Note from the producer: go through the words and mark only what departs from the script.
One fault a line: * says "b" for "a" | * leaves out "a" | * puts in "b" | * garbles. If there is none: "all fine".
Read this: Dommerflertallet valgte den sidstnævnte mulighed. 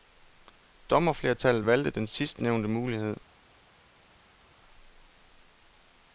all fine